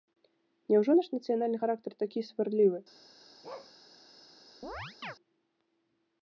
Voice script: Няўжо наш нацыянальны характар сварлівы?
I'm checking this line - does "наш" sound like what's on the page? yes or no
yes